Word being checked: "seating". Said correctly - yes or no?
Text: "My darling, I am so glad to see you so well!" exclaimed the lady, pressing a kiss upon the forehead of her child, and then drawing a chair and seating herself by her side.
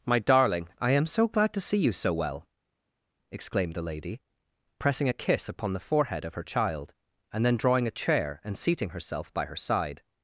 yes